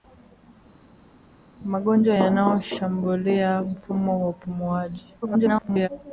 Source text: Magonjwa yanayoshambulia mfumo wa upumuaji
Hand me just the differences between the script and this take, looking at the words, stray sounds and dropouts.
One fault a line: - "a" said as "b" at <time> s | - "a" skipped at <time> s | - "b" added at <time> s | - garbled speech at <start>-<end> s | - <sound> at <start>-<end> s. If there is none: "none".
- garbled speech at 5.2-5.9 s